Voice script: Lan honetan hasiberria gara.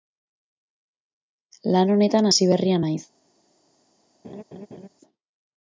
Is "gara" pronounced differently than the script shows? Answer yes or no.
yes